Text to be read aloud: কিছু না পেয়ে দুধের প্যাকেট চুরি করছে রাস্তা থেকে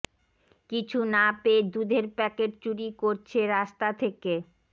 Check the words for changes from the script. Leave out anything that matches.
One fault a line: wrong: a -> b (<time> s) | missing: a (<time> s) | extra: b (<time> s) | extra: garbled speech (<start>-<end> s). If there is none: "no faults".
no faults